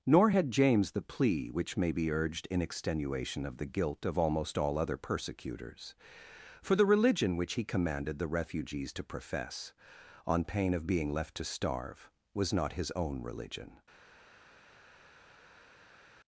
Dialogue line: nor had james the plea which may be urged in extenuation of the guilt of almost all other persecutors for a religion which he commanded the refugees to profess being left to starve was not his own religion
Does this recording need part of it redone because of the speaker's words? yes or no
yes